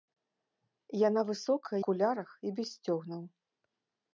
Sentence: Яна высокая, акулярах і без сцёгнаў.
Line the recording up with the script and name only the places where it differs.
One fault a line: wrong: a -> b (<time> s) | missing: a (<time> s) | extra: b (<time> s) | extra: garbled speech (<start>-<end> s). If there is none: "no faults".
no faults